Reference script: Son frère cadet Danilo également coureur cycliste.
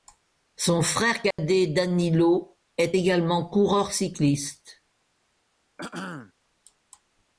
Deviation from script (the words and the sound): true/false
true